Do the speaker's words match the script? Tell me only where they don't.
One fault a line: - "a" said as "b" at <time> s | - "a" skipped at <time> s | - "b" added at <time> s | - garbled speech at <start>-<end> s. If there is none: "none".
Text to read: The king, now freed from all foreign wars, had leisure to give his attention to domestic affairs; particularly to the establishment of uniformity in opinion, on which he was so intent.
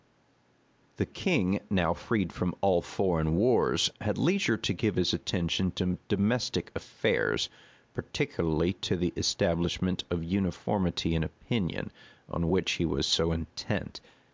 none